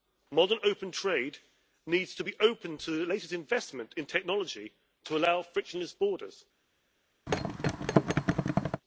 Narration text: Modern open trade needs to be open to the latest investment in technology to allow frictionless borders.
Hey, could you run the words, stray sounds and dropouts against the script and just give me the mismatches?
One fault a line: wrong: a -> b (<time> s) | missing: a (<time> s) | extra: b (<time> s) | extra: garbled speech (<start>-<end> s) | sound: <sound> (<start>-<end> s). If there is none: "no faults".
sound: thud (7.3-8.8 s)